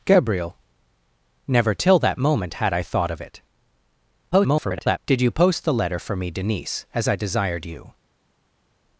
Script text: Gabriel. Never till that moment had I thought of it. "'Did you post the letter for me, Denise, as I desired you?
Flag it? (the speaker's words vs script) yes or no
yes